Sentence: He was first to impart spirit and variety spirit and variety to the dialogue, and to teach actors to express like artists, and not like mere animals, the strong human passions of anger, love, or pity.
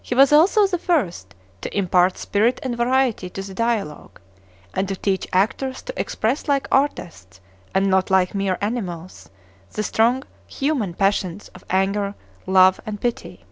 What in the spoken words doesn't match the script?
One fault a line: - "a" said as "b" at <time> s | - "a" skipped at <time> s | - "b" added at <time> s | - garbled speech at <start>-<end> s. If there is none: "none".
- "also the" added at 0.3 s
- "spirit and variety" skipped at 3.3 s
- "or" said as "and" at 12.9 s